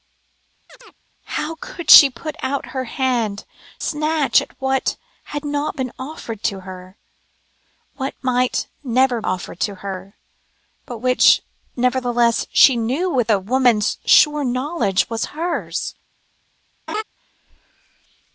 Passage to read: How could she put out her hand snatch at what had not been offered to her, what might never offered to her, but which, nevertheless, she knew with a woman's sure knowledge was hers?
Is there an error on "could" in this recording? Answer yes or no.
no